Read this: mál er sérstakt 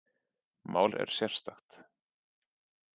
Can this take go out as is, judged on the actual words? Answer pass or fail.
pass